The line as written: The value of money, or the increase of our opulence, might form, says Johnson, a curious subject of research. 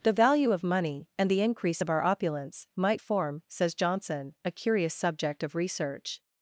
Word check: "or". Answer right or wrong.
wrong